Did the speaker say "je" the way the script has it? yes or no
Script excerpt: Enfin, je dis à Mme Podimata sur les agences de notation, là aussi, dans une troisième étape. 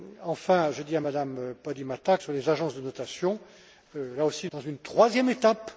yes